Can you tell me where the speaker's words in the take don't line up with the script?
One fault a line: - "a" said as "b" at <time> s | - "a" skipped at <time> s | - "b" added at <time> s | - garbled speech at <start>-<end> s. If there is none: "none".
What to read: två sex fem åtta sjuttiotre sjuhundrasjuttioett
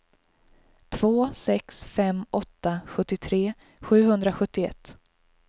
none